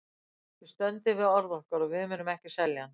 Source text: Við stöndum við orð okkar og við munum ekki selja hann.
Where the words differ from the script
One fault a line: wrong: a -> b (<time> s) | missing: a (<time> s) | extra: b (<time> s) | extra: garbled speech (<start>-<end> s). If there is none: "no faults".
no faults